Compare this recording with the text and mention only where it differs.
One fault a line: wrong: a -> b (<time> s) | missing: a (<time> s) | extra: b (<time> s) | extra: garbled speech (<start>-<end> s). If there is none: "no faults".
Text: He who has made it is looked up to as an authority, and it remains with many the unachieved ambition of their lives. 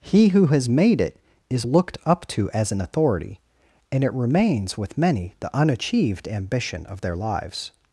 no faults